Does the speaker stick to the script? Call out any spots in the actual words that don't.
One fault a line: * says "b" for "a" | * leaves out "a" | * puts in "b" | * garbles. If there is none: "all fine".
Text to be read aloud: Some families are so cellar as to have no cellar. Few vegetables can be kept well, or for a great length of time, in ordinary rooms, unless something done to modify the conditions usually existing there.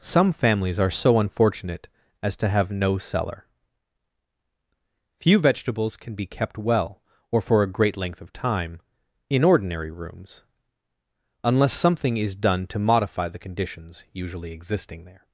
* says "unfortunate" for "cellar"
* puts in "is"